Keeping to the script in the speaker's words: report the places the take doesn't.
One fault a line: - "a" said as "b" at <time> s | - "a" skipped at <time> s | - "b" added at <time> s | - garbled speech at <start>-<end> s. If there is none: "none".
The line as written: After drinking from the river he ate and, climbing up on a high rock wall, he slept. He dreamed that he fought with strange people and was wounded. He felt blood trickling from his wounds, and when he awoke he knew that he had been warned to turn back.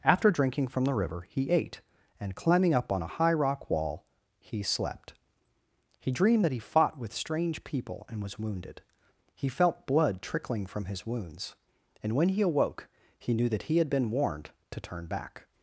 none